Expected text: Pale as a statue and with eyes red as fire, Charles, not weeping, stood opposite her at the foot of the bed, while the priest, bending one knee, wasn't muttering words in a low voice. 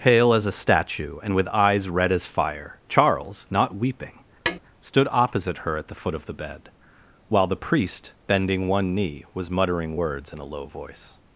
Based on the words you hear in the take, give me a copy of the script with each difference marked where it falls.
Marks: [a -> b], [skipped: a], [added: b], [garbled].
Pale as a statue and with eyes red as fire, Charles, not weeping, stood opposite her at the foot of the bed, while the priest, bending one knee, [wasn't -> was] muttering words in a low voice.